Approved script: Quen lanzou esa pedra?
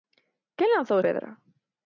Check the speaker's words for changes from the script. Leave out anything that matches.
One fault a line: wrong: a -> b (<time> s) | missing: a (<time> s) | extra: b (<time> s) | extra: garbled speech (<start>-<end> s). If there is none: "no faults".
missing: esa (1.0 s)